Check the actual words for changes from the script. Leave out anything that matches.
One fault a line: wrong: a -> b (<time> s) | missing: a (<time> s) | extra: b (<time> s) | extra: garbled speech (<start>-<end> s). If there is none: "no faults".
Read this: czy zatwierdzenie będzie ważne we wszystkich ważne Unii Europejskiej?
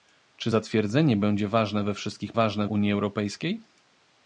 no faults